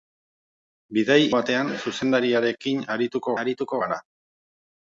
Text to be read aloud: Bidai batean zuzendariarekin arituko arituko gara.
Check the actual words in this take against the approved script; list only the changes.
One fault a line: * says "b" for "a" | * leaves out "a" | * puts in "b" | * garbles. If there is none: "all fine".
all fine